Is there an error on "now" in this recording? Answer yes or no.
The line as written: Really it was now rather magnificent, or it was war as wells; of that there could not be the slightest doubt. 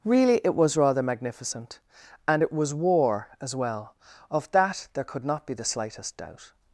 yes